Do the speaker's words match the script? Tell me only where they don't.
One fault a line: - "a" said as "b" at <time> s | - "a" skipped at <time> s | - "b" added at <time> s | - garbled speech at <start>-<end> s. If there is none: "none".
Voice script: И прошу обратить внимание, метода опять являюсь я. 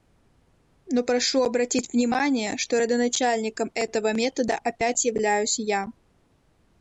- "И" said as "Но" at 0.9 s
- "что родоначальником этого" added at 2.6 s